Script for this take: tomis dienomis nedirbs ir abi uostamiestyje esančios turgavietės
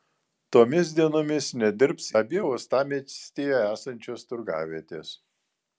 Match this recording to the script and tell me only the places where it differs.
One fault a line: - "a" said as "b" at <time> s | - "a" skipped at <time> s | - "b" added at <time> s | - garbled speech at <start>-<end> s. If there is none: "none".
- "ir" skipped at 2.1 s